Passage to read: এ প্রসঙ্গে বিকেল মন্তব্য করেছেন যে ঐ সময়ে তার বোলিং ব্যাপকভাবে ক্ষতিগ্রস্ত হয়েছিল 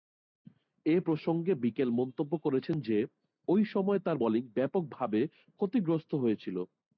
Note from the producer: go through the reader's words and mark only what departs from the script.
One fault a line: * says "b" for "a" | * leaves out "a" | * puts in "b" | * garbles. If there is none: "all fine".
all fine